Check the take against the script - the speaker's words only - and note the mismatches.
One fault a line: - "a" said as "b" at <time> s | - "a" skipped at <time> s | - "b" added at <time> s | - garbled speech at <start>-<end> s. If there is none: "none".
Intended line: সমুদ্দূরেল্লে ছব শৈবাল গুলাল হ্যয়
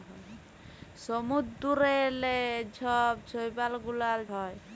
none